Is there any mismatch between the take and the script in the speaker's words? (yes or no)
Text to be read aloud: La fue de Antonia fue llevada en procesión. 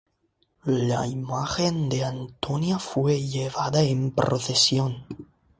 yes